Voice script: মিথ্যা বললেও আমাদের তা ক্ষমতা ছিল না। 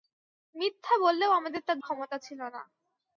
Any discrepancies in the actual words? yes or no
no